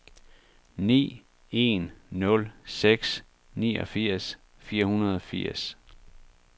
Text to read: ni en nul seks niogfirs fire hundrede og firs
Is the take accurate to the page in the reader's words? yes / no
yes